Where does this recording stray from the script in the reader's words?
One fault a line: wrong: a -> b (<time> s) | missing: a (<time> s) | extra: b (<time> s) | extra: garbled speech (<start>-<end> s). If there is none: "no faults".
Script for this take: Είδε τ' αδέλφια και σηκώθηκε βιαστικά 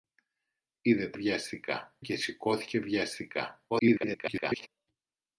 wrong: αδέλφια -> βιαστικά (1.1 s)
extra: garbled speech (3.7-4.7 s)